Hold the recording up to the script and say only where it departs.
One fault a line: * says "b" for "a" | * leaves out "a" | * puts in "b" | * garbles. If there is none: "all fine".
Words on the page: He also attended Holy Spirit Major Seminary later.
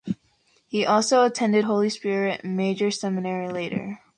all fine